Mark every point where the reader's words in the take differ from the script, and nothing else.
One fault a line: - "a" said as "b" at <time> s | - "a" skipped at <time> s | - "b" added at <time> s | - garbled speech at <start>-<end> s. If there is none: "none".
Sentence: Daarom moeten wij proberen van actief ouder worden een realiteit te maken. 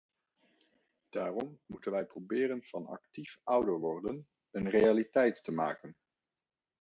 none